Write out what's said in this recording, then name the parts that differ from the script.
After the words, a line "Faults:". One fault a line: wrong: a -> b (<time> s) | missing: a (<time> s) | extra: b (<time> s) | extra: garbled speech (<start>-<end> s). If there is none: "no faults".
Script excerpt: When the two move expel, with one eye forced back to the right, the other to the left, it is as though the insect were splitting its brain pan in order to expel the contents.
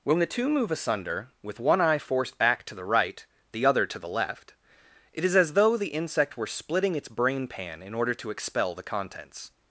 When the two move asunder, with one eye forced back to the right, the other to the left, it is as though the insect were splitting its brain pan in order to expel the contents.
Faults:
wrong: expel -> asunder (0.7 s)